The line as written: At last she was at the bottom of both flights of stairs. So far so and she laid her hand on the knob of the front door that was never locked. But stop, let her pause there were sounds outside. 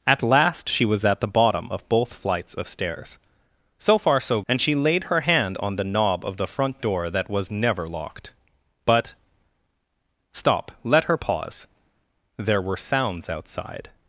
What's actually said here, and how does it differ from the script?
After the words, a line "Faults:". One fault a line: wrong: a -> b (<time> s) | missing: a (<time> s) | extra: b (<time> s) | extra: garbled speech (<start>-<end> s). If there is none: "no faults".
At last she was at the bottom of both flights of stairs. So far so and she laid her hand on the knob of the front door that was never locked. But stop, let her pause there were sounds outside.
Faults:
no faults